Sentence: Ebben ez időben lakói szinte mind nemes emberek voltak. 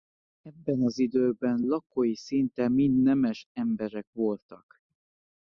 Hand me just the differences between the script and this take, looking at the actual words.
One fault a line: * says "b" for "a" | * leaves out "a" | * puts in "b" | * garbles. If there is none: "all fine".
* says "az" for "ez"